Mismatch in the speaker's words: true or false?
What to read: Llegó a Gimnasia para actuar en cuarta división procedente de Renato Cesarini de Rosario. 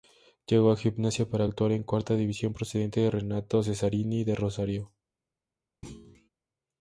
false